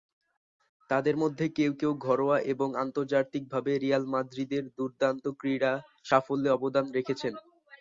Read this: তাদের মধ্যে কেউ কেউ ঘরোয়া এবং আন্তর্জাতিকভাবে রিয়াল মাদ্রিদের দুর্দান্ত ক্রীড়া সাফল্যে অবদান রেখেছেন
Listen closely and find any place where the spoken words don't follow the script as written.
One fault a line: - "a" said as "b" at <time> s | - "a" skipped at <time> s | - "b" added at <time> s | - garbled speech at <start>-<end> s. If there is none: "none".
none